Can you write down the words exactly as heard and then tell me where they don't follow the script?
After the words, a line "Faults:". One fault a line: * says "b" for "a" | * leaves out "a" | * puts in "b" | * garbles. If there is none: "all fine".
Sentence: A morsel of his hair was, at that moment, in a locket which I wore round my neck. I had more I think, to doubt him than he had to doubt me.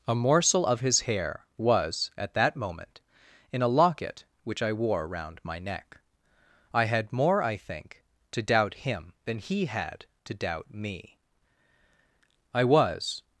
A morsel of his hair was, at that moment, in a locket which I wore round my neck. I had more I think, to doubt him than he had to doubt me. I was
Faults:
* puts in "I was"